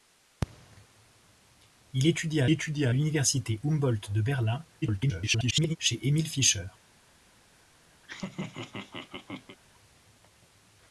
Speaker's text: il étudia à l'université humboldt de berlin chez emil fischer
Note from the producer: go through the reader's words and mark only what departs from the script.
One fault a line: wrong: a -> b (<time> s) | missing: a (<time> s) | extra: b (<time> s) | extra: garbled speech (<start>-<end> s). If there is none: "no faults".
extra: étudia (2.5 s)
extra: garbled speech (4.8-5.8 s)